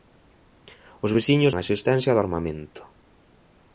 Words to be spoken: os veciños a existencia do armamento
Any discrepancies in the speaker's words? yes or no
no